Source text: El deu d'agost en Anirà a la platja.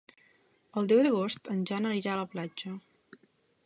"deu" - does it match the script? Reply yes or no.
yes